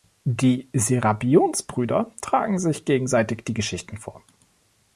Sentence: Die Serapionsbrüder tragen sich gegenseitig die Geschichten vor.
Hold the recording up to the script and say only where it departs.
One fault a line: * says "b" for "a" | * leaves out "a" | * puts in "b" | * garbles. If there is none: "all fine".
all fine